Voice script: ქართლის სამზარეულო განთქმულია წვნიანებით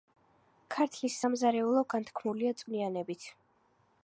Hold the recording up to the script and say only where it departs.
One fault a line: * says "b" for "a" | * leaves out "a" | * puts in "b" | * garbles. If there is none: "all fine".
all fine